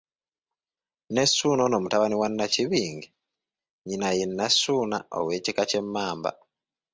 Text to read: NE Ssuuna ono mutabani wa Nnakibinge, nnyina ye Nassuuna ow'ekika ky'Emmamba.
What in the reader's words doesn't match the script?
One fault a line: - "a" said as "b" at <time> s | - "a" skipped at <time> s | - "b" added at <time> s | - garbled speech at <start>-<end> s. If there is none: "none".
none